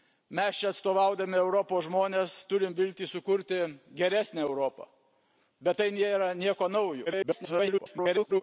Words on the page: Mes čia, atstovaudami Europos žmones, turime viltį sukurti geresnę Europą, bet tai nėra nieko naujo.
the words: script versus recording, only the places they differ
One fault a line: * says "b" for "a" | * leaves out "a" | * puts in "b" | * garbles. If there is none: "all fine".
* garbles